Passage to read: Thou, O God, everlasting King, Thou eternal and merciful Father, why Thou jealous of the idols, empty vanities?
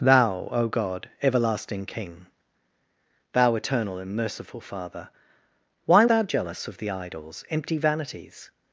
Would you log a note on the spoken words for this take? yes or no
no